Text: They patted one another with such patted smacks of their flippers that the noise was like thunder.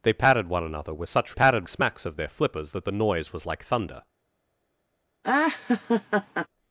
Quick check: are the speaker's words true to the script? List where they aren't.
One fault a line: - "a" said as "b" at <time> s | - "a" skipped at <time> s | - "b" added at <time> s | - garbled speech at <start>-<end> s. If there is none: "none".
none